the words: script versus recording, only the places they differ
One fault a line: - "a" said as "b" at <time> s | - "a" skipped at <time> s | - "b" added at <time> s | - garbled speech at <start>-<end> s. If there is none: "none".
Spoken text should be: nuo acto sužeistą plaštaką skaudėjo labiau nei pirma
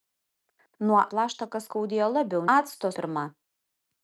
- "acto sužeistą" skipped at 1.0 s
- "nei" said as "acto" at 2.5 s